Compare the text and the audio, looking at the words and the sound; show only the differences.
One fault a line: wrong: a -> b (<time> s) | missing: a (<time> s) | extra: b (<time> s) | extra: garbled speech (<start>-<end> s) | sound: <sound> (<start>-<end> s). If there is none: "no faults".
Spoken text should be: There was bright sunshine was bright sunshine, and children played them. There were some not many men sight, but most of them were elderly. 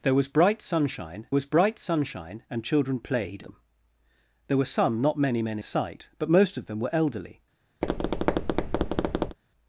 sound: tap (7.8-9.4 s)